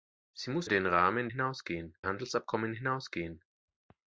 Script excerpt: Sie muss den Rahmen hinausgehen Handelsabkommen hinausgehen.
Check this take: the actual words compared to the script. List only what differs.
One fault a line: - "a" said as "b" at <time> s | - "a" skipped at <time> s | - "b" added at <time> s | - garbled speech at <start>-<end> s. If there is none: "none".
none